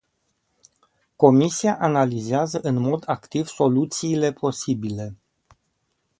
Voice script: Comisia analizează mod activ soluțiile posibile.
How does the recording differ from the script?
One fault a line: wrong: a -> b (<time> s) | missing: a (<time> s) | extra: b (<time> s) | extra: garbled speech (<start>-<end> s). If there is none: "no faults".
extra: în (2.6 s)